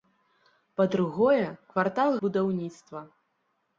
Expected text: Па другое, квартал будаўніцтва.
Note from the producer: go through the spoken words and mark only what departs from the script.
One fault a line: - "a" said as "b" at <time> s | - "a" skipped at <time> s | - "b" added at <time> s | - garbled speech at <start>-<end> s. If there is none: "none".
none